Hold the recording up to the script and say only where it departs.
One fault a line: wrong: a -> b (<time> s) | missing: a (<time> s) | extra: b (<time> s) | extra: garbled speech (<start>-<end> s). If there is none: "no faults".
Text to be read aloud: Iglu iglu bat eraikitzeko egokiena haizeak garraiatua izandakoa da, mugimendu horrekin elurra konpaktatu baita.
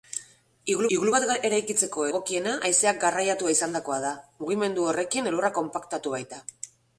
no faults